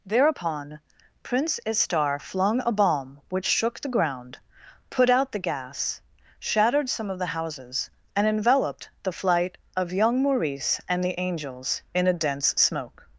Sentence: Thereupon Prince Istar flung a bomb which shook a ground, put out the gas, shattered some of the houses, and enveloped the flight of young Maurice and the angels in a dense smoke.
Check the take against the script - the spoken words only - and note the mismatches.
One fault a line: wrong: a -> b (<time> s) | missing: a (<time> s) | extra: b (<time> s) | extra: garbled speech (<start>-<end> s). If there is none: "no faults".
wrong: a -> the (3.8 s)